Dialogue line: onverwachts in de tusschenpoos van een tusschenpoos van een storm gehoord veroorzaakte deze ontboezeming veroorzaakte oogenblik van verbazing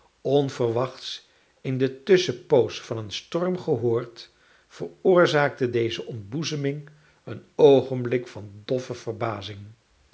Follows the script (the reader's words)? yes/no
no